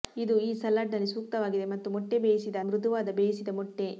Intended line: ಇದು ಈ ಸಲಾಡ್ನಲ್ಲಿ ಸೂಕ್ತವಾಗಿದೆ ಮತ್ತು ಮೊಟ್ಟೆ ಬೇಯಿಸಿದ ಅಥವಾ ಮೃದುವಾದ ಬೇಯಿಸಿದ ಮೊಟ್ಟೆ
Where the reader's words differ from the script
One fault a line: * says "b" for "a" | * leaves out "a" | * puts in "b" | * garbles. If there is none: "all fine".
* leaves out "ಅಥವಾ"